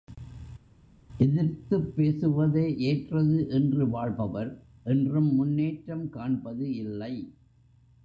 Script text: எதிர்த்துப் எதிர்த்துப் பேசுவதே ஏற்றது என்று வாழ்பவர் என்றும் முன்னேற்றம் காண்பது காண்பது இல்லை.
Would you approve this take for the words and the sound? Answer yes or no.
no